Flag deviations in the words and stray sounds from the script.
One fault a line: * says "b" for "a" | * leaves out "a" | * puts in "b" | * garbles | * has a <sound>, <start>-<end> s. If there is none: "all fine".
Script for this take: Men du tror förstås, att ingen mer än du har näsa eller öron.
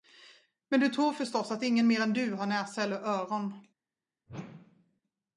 * has a whoosh, 4.3-5.0 s